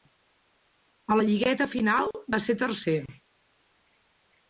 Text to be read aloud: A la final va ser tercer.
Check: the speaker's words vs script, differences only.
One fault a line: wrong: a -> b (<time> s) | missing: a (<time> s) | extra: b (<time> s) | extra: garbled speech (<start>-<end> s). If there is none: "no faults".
extra: lligueta (1.3 s)